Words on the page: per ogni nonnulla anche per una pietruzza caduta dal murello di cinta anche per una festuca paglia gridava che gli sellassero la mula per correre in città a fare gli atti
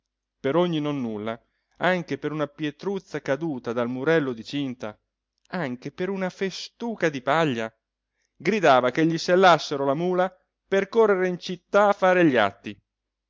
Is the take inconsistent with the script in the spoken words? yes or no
yes